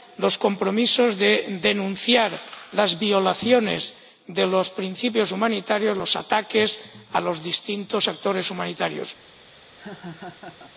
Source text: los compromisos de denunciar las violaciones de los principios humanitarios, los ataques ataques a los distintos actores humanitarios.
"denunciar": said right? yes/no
yes